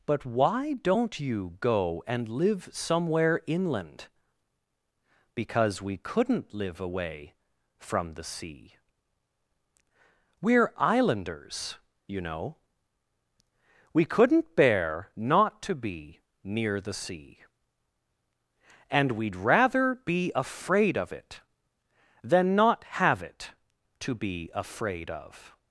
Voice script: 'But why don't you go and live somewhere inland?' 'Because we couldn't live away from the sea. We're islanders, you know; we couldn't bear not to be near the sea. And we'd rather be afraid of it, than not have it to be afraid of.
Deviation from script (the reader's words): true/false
false